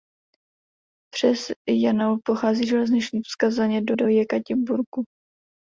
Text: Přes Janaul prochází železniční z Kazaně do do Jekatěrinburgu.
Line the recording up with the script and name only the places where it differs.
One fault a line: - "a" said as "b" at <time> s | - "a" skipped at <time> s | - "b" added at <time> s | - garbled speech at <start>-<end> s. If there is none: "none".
none